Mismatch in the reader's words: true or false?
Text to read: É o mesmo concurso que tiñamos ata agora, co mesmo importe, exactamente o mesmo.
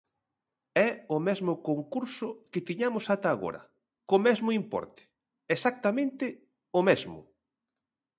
false